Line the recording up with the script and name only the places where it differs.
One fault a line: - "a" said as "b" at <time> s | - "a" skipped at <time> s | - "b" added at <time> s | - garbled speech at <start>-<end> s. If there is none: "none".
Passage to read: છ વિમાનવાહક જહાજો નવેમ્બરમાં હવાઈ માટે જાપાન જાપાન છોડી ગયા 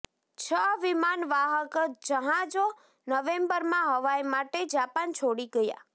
- "જાપાન" skipped at 5.2 s